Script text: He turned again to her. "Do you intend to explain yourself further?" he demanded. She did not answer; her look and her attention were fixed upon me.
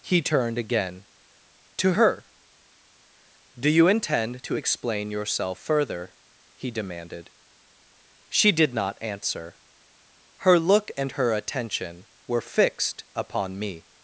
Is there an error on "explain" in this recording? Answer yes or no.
no